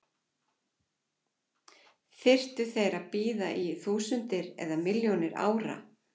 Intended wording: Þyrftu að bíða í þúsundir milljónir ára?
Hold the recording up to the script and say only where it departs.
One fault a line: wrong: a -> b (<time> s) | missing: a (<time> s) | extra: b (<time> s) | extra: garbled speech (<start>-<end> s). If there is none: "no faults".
extra: þeir (2.7 s)
extra: eða (4.7 s)